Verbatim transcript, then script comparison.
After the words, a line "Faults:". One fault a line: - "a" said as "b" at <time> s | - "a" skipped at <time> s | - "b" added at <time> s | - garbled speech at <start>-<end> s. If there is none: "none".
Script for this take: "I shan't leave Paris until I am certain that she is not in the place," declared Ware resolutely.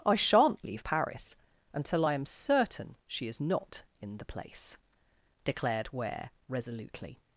"I shan't leave Paris until I am certain she is not in the place," declared Ware resolutely.
Faults:
- "that" skipped at 3.0 s